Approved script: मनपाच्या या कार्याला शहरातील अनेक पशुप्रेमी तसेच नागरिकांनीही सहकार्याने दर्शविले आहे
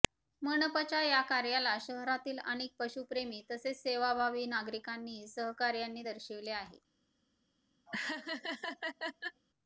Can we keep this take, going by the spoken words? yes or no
no